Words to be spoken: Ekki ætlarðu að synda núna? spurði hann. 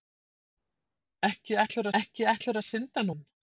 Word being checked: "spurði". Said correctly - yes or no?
no